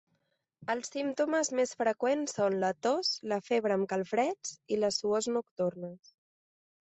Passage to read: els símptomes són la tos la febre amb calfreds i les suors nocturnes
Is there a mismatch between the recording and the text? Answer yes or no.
yes